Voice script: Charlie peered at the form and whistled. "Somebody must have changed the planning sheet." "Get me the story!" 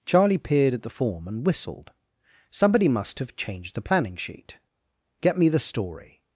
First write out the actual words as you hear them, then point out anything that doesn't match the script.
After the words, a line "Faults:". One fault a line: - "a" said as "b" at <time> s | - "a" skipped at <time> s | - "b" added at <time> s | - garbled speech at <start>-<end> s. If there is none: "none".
Charlie peered at the form and whistled. "Somebody must have changed the planning sheet." "Get me the story!"
Faults:
none